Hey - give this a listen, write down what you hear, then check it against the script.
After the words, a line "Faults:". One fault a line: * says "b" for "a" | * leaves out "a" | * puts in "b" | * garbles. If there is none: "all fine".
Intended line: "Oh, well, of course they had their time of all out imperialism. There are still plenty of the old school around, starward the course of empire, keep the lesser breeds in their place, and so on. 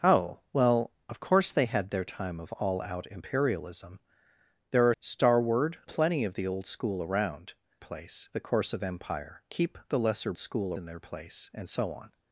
"Oh, well, of course they had their time of all out imperialism. There are starward plenty of the old school around, place the course of empire, keep the lesser school in their place, and so on.
Faults:
* says "starward" for "still"
* says "place" for "starward"
* says "school" for "breeds"